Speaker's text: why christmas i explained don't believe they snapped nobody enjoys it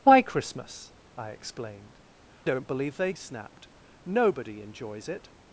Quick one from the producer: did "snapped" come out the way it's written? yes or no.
yes